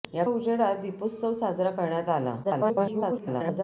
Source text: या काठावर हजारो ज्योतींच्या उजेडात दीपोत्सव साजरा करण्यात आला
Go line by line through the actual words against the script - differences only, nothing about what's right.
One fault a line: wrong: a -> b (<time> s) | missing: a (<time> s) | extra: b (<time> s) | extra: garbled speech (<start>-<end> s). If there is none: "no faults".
missing: काठावर हजारो ज्योतींच्या (0.2 s)
extra: garbled speech (2.4-3.6 s)